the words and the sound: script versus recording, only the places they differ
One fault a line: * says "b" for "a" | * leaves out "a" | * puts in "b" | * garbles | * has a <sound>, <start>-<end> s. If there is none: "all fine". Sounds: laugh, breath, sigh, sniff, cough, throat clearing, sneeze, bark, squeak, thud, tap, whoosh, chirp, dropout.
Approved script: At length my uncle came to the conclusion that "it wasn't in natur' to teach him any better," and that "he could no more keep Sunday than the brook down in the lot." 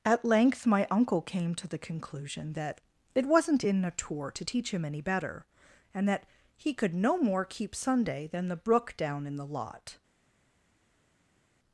all fine